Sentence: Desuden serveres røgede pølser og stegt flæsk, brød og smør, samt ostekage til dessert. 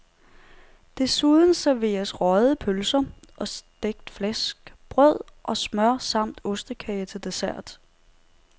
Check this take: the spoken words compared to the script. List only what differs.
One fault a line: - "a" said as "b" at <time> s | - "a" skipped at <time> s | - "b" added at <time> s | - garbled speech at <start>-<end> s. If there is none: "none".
none